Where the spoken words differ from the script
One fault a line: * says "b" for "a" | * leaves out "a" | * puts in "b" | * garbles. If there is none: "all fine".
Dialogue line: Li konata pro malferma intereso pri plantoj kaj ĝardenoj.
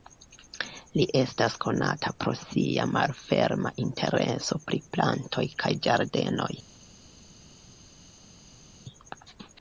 * puts in "estas"
* puts in "sia"